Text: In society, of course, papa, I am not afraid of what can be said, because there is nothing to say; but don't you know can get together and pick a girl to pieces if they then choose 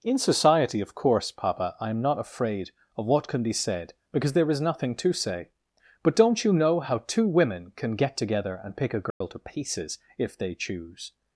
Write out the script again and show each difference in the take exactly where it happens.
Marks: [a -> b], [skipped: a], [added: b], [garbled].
In society, of course, papa, I am not afraid of what can be said, because there is nothing to say; but don't you know [added: how two women] can get together and pick a girl to pieces if they [skipped: then] choose